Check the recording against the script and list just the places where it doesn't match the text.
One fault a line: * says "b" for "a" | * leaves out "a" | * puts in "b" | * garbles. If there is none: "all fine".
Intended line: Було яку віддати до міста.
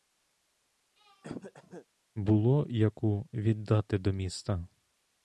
all fine